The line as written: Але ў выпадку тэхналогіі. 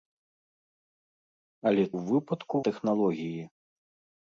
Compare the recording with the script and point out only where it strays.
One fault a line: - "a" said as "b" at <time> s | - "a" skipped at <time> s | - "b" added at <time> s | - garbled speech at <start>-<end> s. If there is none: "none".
none